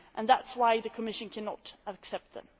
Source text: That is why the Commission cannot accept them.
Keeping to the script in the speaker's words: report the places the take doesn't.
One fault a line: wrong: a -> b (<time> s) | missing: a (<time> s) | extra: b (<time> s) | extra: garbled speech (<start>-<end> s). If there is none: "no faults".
no faults